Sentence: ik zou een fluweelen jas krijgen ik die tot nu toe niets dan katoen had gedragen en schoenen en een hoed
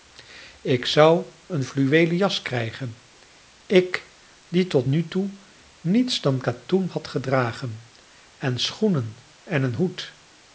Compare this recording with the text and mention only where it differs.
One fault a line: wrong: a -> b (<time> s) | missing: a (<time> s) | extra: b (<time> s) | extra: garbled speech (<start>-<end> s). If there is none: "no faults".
no faults